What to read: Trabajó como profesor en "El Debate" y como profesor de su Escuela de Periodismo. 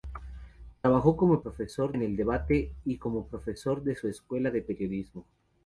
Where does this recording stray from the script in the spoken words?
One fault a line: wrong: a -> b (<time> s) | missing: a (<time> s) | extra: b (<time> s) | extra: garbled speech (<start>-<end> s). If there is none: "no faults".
no faults